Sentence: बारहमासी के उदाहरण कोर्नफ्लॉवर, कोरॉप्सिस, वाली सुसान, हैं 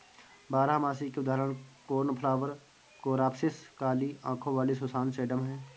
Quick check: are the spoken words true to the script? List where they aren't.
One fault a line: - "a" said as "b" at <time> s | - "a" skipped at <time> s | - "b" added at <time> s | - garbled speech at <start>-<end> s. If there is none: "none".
- "काली आंखों" added at 3.8 s
- "सेडम" added at 5.1 s